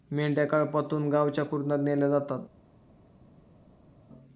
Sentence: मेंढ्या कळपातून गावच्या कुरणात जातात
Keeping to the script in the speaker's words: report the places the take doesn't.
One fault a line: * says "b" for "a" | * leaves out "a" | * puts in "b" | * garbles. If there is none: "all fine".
* puts in "नेल्या"